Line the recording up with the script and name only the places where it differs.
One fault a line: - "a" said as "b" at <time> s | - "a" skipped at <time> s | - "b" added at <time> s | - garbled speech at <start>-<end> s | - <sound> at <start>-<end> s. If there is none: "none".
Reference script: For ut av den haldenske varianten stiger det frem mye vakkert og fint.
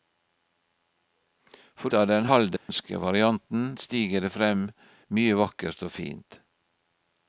- "ut" skipped at 1.9 s
- dropout at 2.6-2.7 s